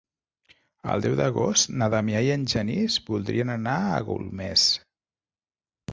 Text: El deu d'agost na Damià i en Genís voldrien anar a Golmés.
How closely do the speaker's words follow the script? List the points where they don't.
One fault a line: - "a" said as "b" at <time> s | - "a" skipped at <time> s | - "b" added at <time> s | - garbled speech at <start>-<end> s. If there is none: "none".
none